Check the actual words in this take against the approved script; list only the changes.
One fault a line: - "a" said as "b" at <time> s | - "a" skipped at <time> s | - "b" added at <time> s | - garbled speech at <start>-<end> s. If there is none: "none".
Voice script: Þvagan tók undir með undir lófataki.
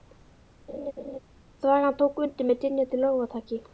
- "undir" said as "dynjandi" at 2.7 s